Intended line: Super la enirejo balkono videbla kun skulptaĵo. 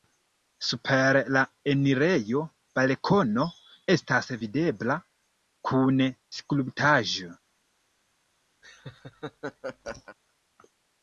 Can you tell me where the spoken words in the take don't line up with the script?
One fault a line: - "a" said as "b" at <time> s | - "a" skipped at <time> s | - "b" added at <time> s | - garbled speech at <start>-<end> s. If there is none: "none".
- "estas" added at 4.0 s